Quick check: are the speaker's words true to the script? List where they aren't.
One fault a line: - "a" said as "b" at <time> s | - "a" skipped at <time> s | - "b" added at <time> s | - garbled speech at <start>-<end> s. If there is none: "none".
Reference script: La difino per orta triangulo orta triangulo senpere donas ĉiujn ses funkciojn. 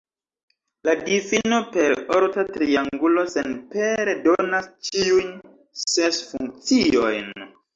- "orta triangulo" skipped at 3.3 s